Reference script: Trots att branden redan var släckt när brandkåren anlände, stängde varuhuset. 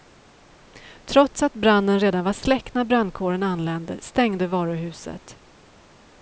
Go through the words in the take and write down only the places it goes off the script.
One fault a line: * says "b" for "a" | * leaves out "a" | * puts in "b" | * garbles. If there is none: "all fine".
all fine